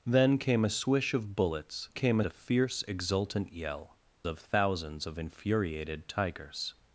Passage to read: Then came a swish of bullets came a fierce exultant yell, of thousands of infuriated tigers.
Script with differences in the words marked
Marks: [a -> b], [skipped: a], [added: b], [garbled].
Then came a swish of bullets came a fierce exultant yell, of thousands of infuriated tigers.